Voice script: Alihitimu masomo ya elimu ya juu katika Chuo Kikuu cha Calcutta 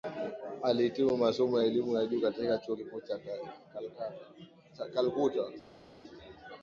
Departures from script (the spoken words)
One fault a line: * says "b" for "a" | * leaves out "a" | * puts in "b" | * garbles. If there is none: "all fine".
all fine